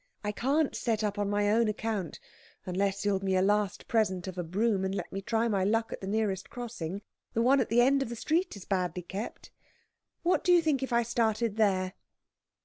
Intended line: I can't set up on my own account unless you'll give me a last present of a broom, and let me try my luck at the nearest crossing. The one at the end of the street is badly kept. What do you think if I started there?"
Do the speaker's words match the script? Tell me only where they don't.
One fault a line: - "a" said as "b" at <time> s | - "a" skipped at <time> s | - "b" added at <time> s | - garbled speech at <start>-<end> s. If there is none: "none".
- "give" skipped at 3.2 s